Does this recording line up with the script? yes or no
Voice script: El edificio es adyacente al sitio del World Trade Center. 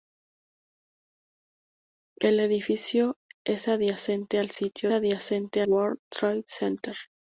no